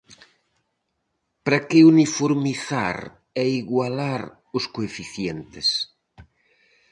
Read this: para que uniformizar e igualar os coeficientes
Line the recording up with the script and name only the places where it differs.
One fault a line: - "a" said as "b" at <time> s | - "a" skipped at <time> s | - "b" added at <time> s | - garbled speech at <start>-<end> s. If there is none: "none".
none